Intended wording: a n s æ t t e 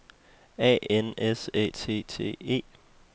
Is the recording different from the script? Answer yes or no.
no